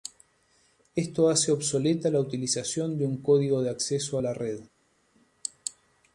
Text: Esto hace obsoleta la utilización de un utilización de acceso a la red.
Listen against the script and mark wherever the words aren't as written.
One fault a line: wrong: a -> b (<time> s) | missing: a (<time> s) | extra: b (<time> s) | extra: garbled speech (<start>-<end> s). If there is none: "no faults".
wrong: utilización -> código (3.2 s)